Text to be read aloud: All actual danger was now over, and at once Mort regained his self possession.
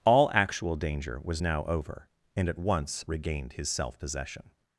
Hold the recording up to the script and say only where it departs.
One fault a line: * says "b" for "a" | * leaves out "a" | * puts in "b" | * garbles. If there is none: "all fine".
* leaves out "Mort"